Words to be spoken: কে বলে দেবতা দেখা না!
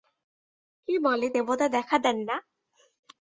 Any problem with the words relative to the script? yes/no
yes